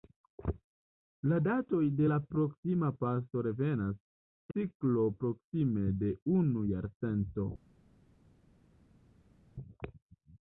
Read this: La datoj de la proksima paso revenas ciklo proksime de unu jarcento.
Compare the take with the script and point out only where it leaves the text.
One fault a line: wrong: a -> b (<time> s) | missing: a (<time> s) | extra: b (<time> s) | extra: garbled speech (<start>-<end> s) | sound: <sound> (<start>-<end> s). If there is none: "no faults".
no faults